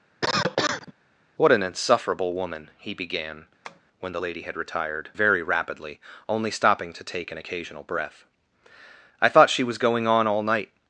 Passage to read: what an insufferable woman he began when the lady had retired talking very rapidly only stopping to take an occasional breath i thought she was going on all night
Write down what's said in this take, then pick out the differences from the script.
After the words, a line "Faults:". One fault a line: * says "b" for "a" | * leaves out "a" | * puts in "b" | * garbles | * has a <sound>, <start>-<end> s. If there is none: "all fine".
what an insufferable woman he began when the lady had retired very rapidly only stopping to take an occasional breath i thought she was going on all night
Faults:
* has a cough, 0.2-0.9 s
* has a tap, 3.6-3.8 s
* leaves out "talking"